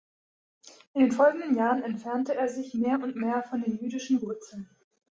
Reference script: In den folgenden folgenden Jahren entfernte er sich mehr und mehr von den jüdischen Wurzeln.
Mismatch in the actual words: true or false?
true